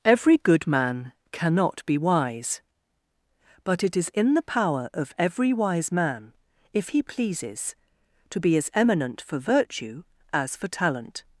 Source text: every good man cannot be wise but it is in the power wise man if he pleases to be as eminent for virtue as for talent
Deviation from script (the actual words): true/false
true